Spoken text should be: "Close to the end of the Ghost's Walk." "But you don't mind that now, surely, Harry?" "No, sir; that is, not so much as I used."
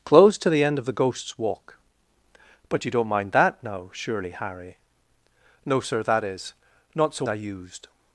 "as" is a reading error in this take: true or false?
true